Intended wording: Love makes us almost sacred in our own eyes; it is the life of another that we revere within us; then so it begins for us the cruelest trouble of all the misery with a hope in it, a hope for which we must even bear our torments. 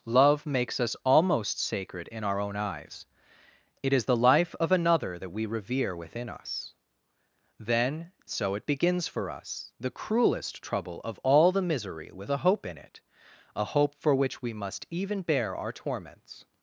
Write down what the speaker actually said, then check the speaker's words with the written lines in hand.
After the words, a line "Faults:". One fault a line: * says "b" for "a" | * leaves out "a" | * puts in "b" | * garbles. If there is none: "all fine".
Love makes us almost sacred in our own eyes; it is the life of another that we revere within us; then so it begins for us the cruelest trouble of all the misery with a hope in it, a hope for which we must even bear our torments.
Faults:
all fine